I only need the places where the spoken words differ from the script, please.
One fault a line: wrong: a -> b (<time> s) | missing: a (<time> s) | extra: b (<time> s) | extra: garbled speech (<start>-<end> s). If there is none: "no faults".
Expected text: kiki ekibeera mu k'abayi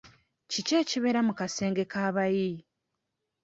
extra: kasenge (1.4 s)